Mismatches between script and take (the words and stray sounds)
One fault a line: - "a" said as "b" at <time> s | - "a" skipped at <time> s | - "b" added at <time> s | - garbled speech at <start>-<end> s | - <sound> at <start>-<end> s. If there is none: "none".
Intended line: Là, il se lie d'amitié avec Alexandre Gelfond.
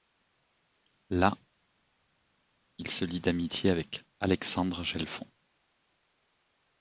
none